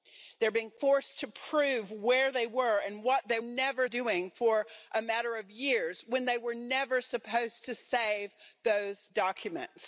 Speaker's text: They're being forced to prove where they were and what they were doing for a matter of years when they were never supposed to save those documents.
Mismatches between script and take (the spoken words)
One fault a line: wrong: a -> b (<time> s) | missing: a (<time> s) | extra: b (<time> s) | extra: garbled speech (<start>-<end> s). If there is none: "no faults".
wrong: were -> never (3.4 s)